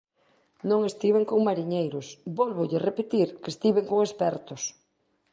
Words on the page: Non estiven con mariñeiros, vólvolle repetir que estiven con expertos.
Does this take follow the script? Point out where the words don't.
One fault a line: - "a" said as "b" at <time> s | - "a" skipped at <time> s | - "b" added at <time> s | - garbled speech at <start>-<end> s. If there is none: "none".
none